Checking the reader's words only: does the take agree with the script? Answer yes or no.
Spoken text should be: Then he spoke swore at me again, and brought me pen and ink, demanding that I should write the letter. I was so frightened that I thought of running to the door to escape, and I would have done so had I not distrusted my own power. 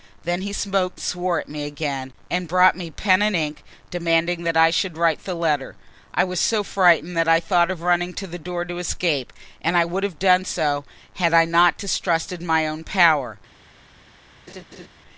yes